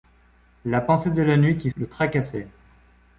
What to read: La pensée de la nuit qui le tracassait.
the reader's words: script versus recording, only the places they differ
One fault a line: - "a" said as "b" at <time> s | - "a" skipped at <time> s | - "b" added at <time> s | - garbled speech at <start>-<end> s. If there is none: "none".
none